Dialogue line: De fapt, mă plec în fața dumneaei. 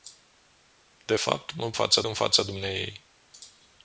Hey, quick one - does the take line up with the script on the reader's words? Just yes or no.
no